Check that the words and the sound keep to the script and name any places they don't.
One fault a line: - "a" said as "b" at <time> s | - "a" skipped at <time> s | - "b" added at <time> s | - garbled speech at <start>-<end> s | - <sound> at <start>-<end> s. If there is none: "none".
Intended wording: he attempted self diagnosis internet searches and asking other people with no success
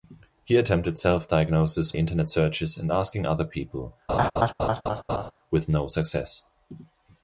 - laugh at 4.1-5.3 s